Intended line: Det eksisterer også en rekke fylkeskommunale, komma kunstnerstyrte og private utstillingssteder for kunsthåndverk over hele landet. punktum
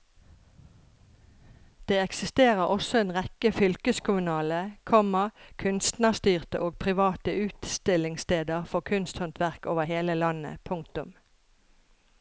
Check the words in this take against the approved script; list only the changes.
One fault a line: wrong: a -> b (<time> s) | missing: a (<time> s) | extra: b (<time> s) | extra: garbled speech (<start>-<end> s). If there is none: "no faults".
no faults